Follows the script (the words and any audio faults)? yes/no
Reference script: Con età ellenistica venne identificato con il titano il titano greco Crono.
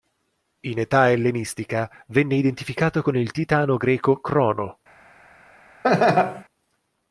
no